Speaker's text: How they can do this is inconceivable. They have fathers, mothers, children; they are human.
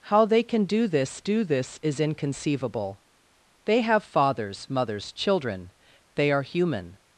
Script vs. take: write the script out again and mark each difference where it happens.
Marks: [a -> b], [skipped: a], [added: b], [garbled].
How they can do this [added: do this] is inconceivable. They have fathers, mothers, children; they are human.